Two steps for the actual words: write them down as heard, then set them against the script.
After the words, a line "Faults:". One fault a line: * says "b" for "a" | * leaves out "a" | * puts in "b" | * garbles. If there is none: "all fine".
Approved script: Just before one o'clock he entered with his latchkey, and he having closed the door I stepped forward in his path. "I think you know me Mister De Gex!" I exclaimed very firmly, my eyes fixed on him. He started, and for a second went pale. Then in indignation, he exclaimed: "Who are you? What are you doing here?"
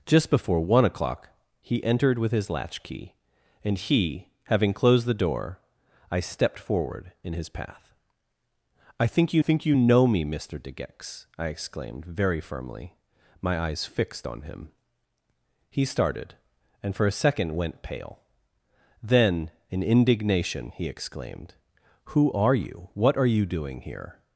Just before one o'clock he entered with his latchkey, and he having closed the door I stepped forward in his path. "I think you think you know me Mister De Gex!" I exclaimed very firmly, my eyes fixed on him. He started, and for a second went pale. Then in indignation, he exclaimed: "Who are you? What are you doing here?"
Faults:
* puts in "think you"